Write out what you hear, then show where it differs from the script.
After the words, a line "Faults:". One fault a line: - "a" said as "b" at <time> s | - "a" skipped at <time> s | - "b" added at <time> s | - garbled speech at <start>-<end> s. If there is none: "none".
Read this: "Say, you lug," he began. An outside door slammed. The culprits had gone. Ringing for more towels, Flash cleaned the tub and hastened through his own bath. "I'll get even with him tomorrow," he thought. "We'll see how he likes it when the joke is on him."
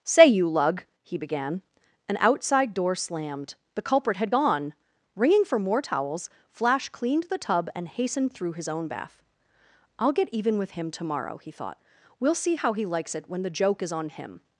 "Say, you lug," he began. An outside door slammed. The culprit had gone. Ringing for more towels, Flash cleaned the tub and hastened through his own bath. "I'll get even with him tomorrow," he thought. "We'll see how he likes it when the joke is on him."
Faults:
- "culprits" said as "culprit" at 3.8 s